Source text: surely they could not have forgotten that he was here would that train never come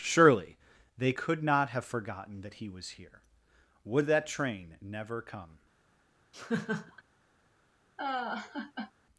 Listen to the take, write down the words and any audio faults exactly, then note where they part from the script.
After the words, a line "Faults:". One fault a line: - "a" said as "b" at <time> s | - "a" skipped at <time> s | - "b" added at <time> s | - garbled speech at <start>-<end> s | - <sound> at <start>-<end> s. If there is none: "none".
surely they could not have forgotten that he was here would that train never come
Faults:
- laugh at 6.3-7.0 s
- laugh at 8.0-8.9 s